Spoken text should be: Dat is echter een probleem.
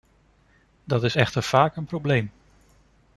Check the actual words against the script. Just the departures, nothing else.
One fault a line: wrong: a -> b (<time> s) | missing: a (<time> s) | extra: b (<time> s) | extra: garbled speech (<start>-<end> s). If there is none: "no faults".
extra: vaak (1.4 s)